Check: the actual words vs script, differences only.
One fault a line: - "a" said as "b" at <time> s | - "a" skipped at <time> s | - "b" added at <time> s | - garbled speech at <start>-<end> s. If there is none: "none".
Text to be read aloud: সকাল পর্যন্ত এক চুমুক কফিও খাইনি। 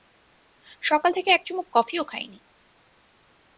- "পর্যন্ত" said as "থেকে" at 1.1 s